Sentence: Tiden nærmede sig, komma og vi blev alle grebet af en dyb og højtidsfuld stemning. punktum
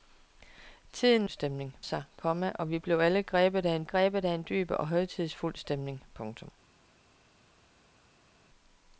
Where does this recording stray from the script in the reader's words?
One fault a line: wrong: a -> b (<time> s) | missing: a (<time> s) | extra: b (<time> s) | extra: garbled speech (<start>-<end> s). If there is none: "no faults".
wrong: nærmede -> stemning (1.3 s)
extra: grebet af en (3.8 s)